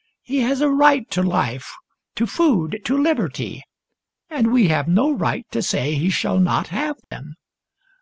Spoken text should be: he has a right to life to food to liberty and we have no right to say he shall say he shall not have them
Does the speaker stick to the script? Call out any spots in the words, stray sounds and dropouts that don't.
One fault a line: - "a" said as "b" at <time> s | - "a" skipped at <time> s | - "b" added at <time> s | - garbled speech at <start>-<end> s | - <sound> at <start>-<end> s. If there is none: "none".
- "say he shall" skipped at 6.4 s
- dropout at 7.0-7.1 s